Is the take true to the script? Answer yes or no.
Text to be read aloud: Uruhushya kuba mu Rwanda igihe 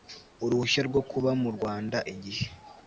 no